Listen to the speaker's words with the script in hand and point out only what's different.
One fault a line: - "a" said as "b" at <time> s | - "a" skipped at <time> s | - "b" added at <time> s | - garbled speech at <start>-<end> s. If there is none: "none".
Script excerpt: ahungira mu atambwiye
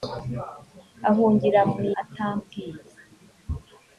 none